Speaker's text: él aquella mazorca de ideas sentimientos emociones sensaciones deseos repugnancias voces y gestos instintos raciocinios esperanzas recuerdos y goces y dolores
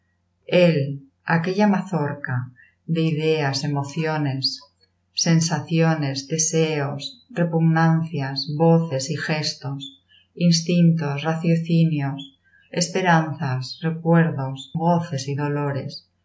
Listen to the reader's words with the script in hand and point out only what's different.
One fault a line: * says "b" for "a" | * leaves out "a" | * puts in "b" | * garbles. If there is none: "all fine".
* leaves out "sentimientos"
* leaves out "y"